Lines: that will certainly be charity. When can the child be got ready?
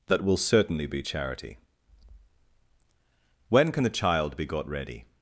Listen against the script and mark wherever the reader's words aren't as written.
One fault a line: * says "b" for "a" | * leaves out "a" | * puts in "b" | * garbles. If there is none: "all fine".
all fine